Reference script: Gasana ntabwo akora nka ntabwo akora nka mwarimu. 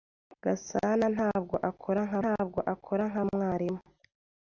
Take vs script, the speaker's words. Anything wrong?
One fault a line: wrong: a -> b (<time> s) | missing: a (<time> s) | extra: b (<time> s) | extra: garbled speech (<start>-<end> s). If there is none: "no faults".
no faults